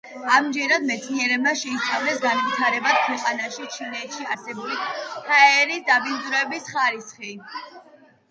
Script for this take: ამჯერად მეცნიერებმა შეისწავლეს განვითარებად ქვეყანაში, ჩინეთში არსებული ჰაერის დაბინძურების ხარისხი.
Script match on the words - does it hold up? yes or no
yes